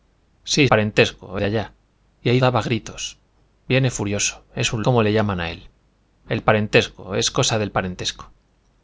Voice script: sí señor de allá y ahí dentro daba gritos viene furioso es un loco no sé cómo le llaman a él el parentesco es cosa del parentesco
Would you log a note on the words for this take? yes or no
yes